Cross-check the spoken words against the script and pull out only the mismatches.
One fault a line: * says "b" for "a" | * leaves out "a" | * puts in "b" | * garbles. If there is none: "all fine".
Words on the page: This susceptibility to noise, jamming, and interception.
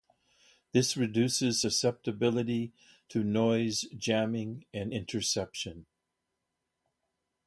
* puts in "reduces"